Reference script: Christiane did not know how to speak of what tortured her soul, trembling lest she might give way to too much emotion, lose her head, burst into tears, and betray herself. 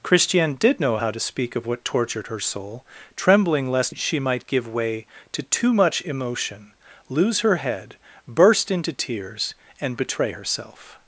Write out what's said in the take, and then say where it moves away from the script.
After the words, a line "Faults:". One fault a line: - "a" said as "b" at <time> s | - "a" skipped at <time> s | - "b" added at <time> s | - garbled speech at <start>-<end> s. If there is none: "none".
Christiane did know how to speak of what tortured her soul, trembling lest she might give way to too much emotion, lose her head, burst into tears, and betray herself.
Faults:
- "not" skipped at 0.8 s